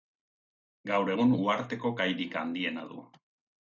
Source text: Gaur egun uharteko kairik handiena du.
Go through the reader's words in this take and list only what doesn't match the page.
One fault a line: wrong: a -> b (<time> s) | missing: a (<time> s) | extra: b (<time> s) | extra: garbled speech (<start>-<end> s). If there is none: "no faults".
no faults